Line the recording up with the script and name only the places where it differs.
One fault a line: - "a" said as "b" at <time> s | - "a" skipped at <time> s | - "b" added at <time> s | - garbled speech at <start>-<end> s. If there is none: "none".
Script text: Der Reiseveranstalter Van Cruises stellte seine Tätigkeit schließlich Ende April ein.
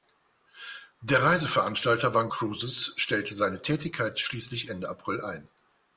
none